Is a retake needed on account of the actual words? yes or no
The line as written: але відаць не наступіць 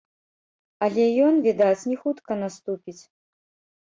yes